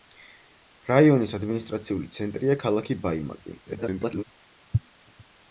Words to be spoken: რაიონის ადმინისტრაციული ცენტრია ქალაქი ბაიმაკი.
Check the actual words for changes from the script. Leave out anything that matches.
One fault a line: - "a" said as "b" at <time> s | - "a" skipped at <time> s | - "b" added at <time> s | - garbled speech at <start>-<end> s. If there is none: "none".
- garbled speech at 3.7-4.2 s